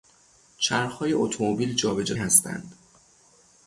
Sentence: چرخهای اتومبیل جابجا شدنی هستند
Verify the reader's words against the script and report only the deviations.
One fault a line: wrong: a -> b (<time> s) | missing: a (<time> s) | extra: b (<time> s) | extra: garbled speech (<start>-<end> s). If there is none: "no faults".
missing: شدنی (2.1 s)